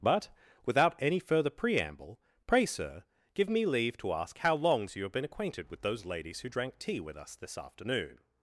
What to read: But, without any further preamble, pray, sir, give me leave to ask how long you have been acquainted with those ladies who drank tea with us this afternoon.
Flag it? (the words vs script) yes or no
yes